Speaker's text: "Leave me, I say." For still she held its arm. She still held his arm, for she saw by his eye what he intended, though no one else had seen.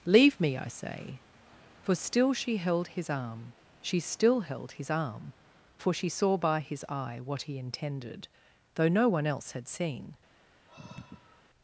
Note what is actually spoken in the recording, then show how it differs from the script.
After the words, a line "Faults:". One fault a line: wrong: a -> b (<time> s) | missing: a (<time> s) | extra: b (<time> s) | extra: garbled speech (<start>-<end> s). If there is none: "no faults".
"Leave me, I say." For still she held his arm. She still held his arm, for she saw by his eye what he intended, though no one else had seen.
Faults:
wrong: its -> his (2.9 s)